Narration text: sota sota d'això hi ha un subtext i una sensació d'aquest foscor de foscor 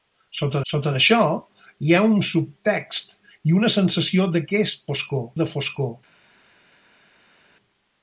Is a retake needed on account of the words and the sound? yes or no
no